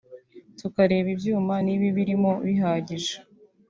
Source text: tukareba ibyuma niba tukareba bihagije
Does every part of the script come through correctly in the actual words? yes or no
no